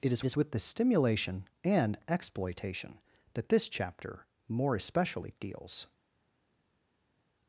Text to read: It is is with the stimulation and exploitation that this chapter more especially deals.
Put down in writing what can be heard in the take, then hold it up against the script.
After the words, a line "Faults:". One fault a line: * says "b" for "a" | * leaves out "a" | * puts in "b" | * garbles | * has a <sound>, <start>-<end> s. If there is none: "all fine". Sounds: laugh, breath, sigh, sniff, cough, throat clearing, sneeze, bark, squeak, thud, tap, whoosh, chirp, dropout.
It is is with the stimulation and exploitation that this chapter more especially deals.
Faults:
all fine